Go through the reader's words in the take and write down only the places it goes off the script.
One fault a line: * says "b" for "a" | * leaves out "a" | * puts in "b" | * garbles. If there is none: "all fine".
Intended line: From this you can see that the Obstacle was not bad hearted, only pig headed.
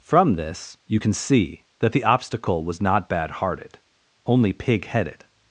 all fine